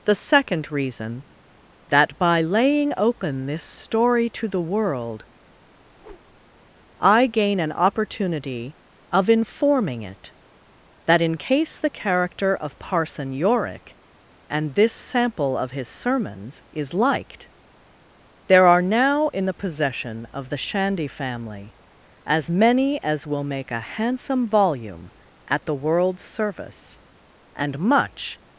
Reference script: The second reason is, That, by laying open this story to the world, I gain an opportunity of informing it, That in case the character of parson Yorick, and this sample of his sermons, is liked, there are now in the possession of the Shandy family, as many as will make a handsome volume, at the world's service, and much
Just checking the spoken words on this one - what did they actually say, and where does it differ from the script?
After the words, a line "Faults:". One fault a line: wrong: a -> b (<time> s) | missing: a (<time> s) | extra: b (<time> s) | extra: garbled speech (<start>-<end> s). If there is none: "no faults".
The second reason That, by laying open this story to the world, I gain an opportunity of informing it, That in case the character of parson Yorick, and this sample of his sermons, is liked, there are now in the possession of the Shandy family, as many as will make a handsome volume, at the world's service, and much
Faults:
missing: is (1.2 s)